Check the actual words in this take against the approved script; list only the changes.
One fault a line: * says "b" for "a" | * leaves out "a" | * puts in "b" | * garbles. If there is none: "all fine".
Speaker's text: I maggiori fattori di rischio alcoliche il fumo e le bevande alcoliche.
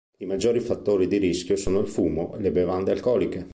* says "sono" for "alcoliche"